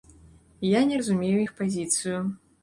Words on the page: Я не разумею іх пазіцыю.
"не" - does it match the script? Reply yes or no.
yes